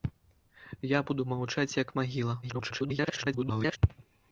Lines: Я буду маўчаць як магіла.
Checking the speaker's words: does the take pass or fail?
fail